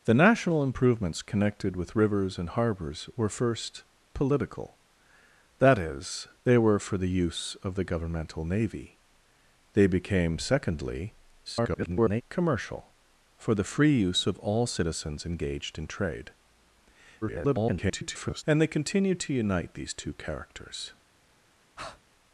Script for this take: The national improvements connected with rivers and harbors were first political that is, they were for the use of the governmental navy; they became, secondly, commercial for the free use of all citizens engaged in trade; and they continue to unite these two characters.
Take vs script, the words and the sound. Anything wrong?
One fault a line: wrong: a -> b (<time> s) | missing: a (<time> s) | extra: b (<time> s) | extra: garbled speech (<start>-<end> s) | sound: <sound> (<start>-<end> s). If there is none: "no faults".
extra: garbled speech (11.4-12.2 s)
extra: garbled speech (17.2-18.4 s)
sound: breath (21.8-22.0 s)